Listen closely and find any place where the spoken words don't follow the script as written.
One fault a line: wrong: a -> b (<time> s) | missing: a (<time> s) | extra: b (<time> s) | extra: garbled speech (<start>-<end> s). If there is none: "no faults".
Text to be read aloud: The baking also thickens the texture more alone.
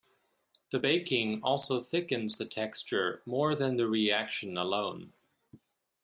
extra: than the reaction (3.6 s)